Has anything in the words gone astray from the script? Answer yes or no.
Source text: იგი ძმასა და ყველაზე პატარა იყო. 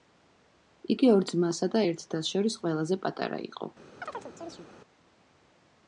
yes